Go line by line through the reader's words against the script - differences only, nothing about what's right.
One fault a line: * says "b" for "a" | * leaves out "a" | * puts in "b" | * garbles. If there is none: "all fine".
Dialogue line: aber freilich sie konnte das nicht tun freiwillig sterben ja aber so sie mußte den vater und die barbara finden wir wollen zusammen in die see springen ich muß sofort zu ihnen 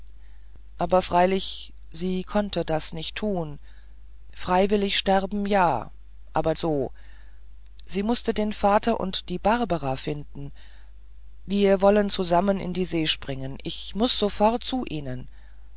all fine